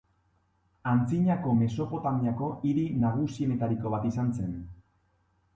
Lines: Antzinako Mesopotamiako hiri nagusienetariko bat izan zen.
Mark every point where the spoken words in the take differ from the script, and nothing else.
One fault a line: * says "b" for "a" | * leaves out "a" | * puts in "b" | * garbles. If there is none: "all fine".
all fine